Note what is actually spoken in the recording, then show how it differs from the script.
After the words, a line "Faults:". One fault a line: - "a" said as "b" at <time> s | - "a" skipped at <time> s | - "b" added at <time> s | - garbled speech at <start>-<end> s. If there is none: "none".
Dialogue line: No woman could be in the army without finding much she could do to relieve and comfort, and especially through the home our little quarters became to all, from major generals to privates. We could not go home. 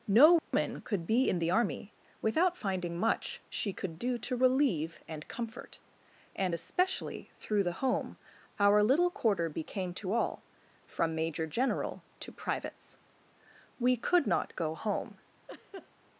No woman could be in the army without finding much she could do to relieve and comfort, and especially through the home our little quarter became to all, from major general to privates. We could not go home.
Faults:
- "quarters" said as "quarter" at 9.1 s
- "generals" said as "general" at 11.5 s